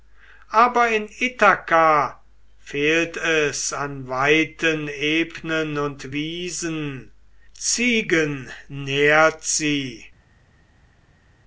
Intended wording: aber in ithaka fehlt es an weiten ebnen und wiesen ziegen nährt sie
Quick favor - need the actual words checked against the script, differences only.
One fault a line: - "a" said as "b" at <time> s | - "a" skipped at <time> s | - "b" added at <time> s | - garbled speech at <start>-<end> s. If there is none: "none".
none